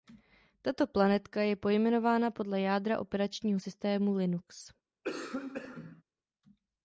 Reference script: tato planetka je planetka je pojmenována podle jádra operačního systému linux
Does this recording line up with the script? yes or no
no